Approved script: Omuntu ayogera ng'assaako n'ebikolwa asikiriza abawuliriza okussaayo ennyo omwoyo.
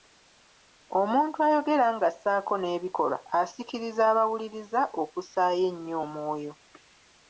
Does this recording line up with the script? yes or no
yes